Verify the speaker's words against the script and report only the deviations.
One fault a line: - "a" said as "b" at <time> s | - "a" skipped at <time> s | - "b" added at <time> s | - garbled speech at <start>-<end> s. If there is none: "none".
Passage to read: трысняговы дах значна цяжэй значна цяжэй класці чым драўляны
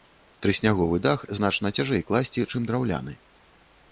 - "значна цяжэй" skipped at 2.0 s